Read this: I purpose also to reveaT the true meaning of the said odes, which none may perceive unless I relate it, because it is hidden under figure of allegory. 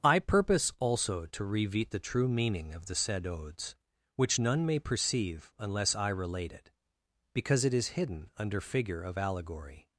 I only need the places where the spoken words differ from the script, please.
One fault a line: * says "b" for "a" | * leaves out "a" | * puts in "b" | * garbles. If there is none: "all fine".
all fine